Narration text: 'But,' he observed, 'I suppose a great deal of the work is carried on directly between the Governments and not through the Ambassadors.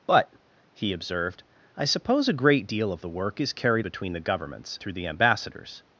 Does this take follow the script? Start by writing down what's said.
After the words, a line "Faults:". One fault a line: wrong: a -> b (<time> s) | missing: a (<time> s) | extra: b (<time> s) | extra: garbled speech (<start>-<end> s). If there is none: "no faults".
'But,' he observed, 'I suppose a great deal of the work is carried between the Governments through the Ambassadors.
Faults:
missing: on directly (3.9 s)
missing: and not (4.8 s)